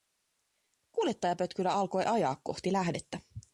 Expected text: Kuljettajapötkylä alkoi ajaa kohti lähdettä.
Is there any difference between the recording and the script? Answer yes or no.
no